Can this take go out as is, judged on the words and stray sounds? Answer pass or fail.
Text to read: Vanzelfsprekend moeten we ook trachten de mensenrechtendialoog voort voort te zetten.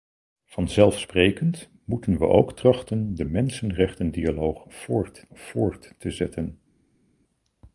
pass